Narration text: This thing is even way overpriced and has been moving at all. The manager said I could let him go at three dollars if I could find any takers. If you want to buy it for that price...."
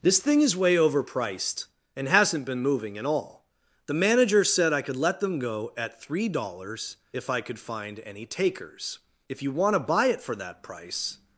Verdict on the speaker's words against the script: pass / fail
fail